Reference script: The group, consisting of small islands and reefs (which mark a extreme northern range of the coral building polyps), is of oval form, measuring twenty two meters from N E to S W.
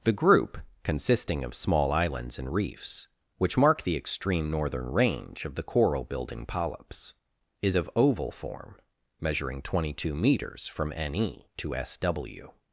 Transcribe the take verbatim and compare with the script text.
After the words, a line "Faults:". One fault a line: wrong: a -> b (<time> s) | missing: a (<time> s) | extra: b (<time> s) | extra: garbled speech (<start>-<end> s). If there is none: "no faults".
The group, consisting of small islands and reefs (which mark the extreme northern range of the coral building polyps), is of oval form, measuring twenty two meters from N E to S W.
Faults:
wrong: a -> the (3.8 s)